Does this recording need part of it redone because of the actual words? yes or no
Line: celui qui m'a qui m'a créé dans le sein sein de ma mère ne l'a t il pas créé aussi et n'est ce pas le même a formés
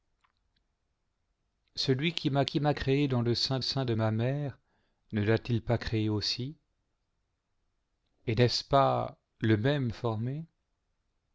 no